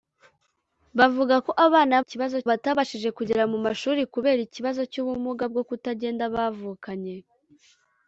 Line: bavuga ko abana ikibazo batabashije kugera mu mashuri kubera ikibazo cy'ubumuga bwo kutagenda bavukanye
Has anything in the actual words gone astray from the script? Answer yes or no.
no